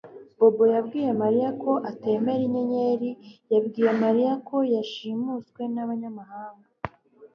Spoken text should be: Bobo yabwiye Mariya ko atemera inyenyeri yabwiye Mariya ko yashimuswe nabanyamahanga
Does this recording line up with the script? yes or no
yes